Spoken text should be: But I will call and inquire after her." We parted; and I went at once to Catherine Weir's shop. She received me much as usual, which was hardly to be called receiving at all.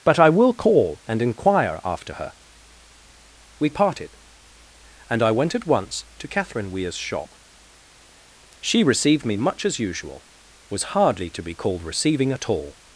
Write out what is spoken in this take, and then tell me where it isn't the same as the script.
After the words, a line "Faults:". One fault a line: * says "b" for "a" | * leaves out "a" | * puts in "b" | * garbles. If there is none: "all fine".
But I will call and inquire after her." We parted; and I went at once to Catherine Weir's shop. She received me much as usual, was hardly to be called receiving at all.
Faults:
* leaves out "which"